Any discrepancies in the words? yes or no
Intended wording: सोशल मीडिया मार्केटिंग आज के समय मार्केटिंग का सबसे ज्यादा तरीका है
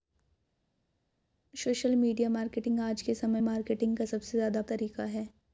no